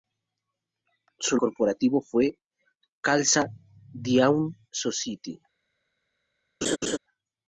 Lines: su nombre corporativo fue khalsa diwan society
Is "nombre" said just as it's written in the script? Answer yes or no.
no